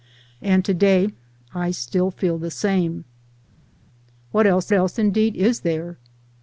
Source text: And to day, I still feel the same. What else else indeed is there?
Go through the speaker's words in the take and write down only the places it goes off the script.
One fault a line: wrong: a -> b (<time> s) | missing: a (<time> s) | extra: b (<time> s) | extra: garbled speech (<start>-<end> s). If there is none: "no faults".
no faults